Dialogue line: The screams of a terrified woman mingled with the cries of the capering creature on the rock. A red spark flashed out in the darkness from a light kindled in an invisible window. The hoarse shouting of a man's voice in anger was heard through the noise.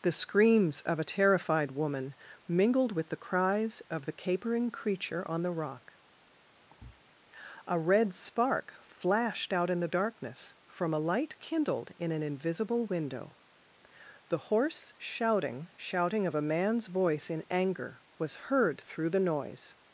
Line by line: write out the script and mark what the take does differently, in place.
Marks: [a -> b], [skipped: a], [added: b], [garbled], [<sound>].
The screams of a terrified woman mingled with the cries of the capering creature on the rock. [thud] A red spark flashed out in the darkness from a light kindled in an invisible window. The hoarse shouting [added: shouting] of a man's voice in anger was heard through the noise.